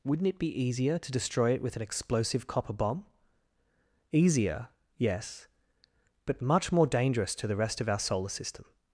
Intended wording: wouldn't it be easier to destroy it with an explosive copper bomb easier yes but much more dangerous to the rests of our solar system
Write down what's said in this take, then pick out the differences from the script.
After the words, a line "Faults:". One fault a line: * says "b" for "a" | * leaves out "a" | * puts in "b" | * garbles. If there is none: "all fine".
wouldn't it be easier to destroy it with an explosive copper bomb easier yes but much more dangerous to the rest of our solar system
Faults:
* says "rest" for "rests"